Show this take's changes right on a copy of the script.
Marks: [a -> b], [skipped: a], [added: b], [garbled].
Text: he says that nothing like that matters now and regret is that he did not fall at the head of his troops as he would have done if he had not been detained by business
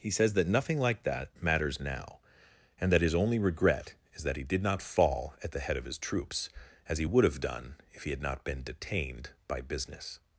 he says that nothing like that matters now and [added: that his only] regret is that he did not fall at the head of his troops as he would have done if he had not been detained by business